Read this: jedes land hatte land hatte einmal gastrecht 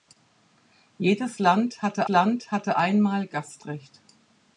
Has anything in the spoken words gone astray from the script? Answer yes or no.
no